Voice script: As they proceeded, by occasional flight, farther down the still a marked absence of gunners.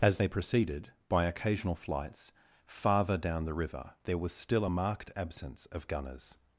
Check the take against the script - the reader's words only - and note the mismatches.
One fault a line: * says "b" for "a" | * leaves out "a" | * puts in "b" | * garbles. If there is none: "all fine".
* says "flights" for "flight"
* puts in "river there was"